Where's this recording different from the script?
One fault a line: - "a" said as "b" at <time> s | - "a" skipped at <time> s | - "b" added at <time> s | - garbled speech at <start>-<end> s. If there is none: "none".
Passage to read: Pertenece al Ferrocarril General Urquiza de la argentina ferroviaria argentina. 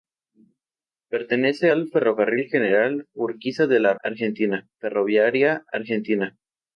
none